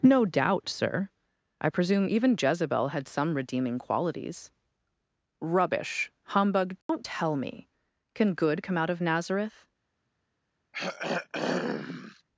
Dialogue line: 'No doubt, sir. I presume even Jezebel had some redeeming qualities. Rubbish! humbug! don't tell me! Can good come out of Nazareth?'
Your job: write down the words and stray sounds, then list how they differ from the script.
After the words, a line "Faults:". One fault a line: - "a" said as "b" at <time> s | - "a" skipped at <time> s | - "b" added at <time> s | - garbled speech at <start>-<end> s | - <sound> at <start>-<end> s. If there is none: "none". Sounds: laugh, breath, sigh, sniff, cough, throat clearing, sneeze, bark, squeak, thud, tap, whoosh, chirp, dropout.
'No doubt, sir. I presume even Jezebel had some redeeming qualities. Rubbish! humbug! don't tell me! Can good come out of Nazareth?'
Faults:
- dropout at 6.8-6.9 s
- throat clearing at 10.7-12.2 s